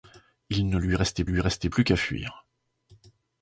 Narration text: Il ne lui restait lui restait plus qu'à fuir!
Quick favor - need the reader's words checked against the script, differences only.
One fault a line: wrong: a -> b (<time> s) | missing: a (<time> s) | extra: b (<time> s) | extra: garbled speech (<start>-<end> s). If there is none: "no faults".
no faults